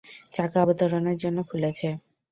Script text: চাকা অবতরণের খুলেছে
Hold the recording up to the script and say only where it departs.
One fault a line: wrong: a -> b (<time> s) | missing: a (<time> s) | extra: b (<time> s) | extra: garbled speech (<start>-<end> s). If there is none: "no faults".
extra: জন্য (1.2 s)